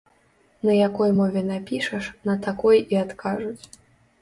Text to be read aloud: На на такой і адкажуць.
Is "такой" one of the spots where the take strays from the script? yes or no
no